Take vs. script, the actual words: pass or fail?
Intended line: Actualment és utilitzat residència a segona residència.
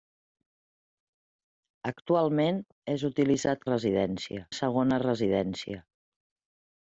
pass